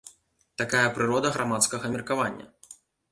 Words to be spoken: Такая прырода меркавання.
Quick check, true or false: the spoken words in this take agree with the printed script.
false